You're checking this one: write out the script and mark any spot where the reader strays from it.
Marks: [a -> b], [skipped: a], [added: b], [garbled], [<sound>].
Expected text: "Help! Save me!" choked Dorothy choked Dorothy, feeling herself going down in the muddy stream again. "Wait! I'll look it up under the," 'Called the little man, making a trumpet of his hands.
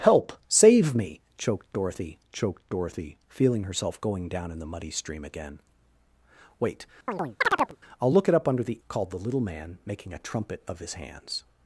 "Help! Save me!" choked Dorothy choked Dorothy, feeling herself going down in the muddy stream again. "Wait! [chirp] I'll look it up under the," 'Called the little man, making a trumpet of his hands.